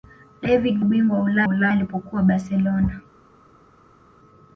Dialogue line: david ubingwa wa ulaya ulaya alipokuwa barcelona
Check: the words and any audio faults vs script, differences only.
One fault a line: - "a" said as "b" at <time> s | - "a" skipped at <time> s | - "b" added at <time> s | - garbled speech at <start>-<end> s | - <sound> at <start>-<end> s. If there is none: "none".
none